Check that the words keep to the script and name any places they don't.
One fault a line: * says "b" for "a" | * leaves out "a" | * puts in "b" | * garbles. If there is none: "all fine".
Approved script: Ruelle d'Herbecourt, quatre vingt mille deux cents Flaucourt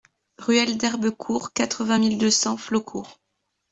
all fine